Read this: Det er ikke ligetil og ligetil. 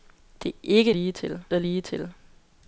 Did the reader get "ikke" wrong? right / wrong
right